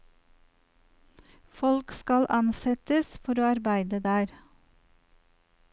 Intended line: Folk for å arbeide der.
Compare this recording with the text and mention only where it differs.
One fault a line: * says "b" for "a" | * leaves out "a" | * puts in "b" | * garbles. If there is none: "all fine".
* puts in "skal ansettes"